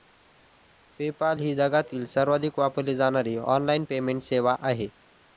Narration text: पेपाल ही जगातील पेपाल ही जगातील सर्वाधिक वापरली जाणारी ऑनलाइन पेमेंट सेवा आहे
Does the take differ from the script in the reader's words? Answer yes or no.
yes